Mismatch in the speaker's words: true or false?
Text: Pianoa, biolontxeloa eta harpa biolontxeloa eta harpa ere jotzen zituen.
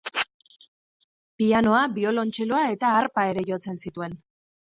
true